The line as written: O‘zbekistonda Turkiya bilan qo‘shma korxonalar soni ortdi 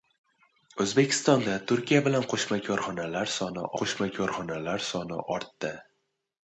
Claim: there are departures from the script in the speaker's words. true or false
true